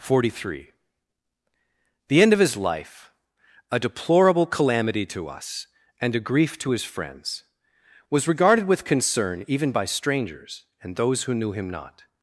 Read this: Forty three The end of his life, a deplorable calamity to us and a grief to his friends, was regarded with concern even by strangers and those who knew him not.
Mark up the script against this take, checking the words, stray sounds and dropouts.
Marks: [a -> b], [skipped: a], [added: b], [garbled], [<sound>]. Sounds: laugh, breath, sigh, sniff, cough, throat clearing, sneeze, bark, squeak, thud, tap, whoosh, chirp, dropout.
Forty three The end of his life, a deplorable calamity to us and a grief to his friends, was regarded with concern even by strangers and those who knew him not.